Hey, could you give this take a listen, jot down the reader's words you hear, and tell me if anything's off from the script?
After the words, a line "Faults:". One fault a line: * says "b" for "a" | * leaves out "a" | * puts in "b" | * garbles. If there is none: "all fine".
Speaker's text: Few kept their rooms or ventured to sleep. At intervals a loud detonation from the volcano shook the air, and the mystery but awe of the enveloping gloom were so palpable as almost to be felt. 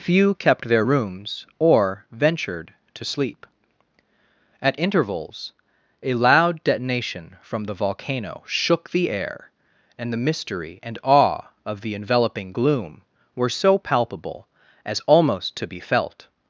Few kept their rooms or ventured to sleep. At intervals a loud detonation from the volcano shook the air, and the mystery and awe of the enveloping gloom were so palpable as almost to be felt.
Faults:
* says "and" for "but"